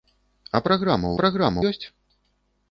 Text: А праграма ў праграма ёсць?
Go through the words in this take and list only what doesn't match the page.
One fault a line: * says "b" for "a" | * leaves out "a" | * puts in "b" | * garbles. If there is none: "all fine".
all fine